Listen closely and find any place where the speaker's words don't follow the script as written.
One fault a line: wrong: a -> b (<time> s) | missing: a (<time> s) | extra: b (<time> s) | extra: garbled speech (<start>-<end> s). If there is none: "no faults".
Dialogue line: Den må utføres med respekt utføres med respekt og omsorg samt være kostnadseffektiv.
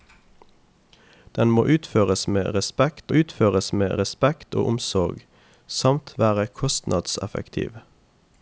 no faults